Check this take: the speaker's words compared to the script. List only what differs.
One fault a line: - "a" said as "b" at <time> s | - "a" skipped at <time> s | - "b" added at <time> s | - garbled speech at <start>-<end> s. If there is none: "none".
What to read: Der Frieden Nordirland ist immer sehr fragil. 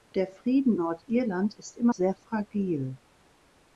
none